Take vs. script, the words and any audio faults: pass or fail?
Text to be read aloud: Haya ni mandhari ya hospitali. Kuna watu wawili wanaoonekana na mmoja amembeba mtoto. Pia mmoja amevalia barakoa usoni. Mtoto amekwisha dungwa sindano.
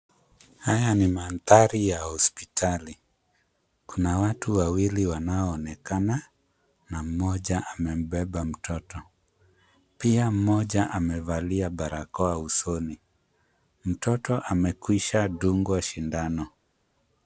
pass